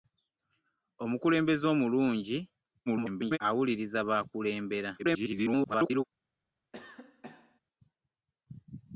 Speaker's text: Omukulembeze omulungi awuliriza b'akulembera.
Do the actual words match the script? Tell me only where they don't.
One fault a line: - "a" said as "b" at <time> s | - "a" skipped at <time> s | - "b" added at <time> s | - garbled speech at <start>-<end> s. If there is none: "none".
- garbled speech at 2.9-3.4 s
- garbled speech at 5.0-6.0 s